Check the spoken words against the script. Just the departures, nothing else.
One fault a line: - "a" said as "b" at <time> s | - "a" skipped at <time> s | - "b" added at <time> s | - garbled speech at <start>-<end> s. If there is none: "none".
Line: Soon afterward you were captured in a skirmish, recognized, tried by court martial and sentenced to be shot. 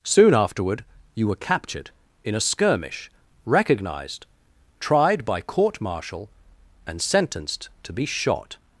none